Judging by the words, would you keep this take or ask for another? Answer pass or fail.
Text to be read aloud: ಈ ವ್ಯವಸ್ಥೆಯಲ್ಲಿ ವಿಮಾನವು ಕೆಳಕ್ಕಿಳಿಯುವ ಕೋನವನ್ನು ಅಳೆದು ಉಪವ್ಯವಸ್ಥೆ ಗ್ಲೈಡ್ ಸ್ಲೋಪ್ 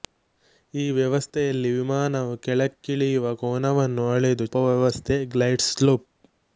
pass